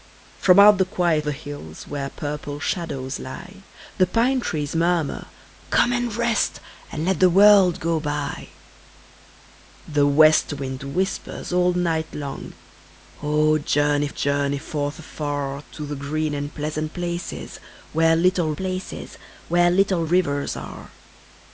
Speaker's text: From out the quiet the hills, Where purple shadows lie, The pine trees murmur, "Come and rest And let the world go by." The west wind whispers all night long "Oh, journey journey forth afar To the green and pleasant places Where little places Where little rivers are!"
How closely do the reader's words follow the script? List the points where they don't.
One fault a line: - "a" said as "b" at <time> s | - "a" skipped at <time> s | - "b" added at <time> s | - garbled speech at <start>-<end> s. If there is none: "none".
none